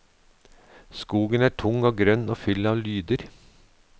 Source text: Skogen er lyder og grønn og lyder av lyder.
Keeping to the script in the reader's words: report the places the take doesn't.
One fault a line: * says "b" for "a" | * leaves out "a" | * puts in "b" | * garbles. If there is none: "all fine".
* says "tung" for "lyder"
* says "full" for "lyder"